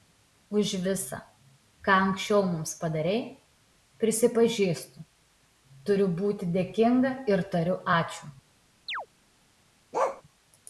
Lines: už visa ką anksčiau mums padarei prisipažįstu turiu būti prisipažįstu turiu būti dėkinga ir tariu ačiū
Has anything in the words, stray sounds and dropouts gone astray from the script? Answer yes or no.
yes